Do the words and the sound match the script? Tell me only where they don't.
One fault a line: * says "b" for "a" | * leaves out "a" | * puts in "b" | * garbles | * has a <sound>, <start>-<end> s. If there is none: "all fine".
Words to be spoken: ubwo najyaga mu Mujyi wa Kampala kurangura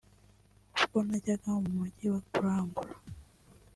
* leaves out "Kampala"
* has a thud, 3.1-3.3 s